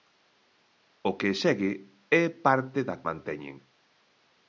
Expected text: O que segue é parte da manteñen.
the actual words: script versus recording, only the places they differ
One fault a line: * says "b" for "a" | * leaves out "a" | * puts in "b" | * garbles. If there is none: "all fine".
all fine